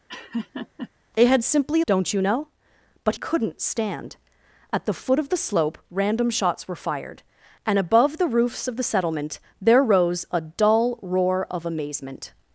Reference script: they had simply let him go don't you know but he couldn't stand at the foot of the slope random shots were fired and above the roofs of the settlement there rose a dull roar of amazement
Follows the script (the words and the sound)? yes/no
no